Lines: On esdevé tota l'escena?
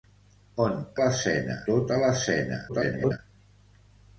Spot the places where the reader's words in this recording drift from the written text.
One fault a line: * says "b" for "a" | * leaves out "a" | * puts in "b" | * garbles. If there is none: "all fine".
* says "l'escena" for "esdevé"
* garbles